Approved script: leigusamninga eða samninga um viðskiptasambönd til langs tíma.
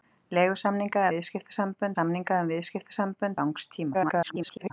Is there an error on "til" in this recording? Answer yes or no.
yes